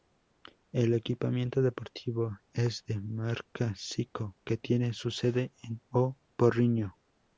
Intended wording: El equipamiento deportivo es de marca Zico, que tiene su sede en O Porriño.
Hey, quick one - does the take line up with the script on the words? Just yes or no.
yes